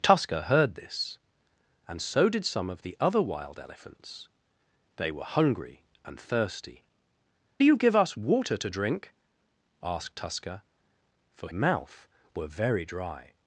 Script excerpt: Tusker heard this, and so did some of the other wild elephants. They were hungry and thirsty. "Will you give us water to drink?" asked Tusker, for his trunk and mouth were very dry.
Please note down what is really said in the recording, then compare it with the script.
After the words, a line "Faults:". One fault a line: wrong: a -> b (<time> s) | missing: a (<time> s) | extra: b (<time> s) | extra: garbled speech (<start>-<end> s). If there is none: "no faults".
Tusker heard this, and so did some of the other wild elephants. They were hungry and thirsty. "You give us water to drink?" asked Tusker, for mouth were very dry.
Faults:
missing: Will (6.8 s)
missing: his trunk and (11.5 s)